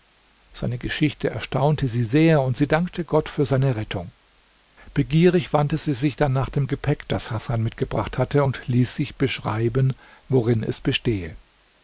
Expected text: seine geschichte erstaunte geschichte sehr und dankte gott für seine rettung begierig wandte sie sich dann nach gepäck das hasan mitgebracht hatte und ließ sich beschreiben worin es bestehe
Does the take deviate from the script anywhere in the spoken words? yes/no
yes